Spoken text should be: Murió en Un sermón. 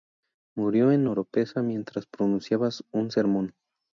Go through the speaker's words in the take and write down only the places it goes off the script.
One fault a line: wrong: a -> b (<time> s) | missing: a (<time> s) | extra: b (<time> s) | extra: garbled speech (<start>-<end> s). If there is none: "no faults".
extra: Oropesa mientras pronunciaba (1.0 s)